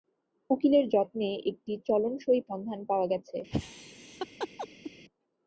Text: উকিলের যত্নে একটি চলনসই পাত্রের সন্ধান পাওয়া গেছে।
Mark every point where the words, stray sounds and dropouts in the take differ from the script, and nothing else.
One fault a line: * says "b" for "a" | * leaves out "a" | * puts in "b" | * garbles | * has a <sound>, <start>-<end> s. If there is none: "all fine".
* leaves out "পাত্রের"
* has a laugh, 3.5-4.9 s